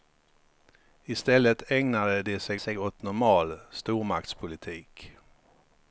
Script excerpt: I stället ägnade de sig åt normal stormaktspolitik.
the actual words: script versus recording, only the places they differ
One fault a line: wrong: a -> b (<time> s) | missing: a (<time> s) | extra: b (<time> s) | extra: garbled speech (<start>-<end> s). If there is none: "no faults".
extra: sig (2.6 s)